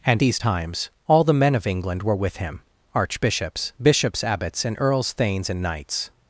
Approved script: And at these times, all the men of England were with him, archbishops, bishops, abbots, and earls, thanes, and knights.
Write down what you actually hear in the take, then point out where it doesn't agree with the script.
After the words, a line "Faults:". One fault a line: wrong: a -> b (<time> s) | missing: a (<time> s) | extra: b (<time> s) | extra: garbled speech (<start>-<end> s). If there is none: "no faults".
And these times, all the men of England were with him, archbishops, bishops, abbots, and earls, thanes, and knights.
Faults:
missing: at (0.2 s)